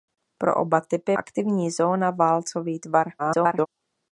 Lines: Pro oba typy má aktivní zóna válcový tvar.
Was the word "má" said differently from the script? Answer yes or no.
yes